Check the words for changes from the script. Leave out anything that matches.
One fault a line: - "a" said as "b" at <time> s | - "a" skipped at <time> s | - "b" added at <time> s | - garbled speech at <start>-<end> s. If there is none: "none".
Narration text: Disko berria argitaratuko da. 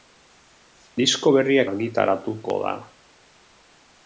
none